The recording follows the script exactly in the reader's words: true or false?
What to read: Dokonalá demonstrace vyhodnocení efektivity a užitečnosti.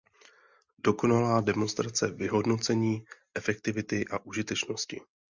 true